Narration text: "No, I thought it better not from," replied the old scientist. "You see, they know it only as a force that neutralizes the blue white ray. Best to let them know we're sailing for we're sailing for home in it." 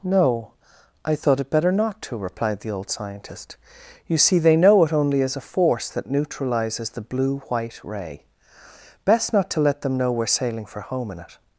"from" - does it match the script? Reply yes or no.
no